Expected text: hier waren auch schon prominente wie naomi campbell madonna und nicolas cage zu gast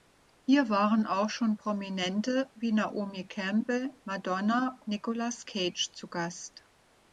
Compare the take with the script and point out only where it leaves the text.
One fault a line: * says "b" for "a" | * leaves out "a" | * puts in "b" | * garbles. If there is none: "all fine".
* leaves out "und"